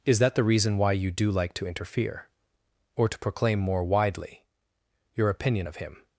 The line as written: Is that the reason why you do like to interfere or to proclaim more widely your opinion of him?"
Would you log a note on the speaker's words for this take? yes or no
no